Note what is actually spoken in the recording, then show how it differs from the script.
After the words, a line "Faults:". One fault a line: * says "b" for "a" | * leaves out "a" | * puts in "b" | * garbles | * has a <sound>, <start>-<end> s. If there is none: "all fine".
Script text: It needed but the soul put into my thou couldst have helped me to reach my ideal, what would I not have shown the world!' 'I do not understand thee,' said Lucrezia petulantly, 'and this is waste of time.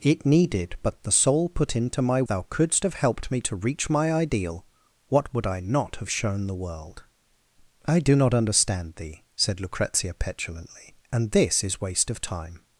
It needed but the soul put into my thou couldst have helped me to reach my ideal, what would I not have shown the world!' 'I do not understand thee,' said Lucrezia petulantly, 'and this is waste of time.
Faults:
all fine